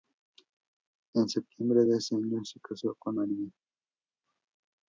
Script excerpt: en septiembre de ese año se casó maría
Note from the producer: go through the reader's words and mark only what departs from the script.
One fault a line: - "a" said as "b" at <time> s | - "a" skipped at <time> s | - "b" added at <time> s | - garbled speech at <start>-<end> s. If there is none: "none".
- "con" added at 3.0 s